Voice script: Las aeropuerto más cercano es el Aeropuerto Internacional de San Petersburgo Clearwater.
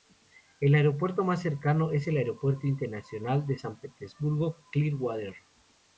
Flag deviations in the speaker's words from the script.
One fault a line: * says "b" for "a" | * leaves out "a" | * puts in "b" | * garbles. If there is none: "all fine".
* says "El" for "Las"